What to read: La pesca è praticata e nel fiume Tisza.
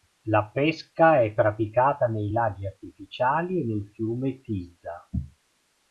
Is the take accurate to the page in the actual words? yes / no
no